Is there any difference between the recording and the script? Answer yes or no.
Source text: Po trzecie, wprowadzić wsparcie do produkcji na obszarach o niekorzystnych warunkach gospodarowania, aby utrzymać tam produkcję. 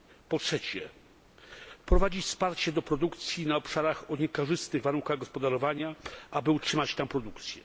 no